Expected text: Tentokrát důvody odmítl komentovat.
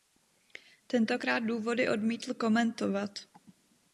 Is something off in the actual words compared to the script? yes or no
no